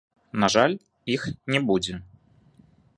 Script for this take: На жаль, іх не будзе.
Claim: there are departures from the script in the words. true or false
false